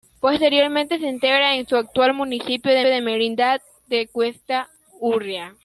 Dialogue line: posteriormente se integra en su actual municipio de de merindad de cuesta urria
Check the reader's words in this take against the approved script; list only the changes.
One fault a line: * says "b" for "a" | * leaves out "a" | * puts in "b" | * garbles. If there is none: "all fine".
all fine